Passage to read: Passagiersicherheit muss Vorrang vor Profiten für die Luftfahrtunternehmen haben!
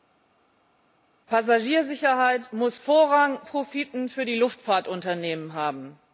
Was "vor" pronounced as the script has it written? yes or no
no